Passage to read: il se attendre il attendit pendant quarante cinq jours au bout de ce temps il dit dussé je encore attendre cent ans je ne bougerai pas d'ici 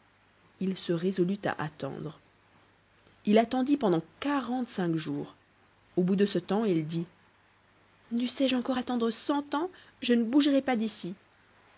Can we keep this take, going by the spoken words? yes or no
no